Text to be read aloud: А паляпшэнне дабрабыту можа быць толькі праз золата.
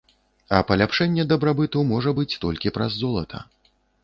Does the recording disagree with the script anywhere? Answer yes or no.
no